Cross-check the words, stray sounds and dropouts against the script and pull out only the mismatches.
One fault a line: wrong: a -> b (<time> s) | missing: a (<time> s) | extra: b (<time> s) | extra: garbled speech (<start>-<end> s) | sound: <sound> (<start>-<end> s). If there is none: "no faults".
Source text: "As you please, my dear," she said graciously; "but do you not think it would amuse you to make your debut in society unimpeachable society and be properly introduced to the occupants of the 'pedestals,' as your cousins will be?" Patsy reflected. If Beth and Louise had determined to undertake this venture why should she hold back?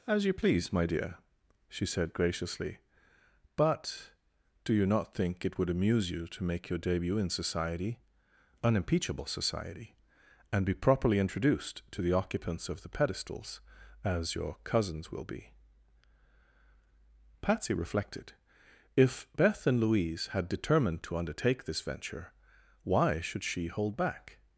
no faults